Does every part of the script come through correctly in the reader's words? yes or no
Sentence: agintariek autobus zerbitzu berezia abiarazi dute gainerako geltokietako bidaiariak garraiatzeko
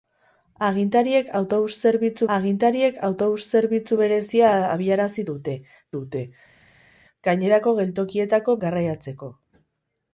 no